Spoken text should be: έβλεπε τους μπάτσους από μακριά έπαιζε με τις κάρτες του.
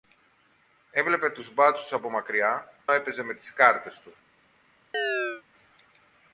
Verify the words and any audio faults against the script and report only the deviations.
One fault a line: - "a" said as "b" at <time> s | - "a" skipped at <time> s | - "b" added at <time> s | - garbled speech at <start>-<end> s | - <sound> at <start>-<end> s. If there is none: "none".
- chirp at 4.9-5.4 s